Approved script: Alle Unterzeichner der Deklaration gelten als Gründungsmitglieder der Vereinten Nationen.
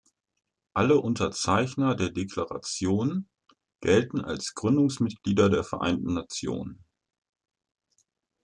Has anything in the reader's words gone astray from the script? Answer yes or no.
no